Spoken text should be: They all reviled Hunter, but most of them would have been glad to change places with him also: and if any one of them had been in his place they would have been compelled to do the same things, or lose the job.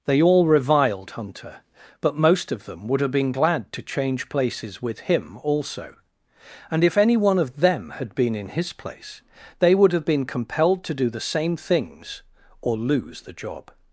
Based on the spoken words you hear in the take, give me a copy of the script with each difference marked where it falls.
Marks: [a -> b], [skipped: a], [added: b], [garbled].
They all reviled Hunter, but most of them would have been glad to change places with him also: and if any one of them had been in his place they would have been compelled to do the same things, or lose the job.